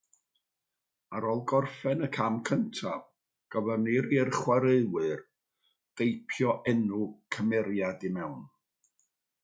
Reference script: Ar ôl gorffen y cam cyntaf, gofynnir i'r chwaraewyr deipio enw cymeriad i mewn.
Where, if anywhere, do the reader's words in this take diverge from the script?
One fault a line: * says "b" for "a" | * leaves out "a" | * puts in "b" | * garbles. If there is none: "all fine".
all fine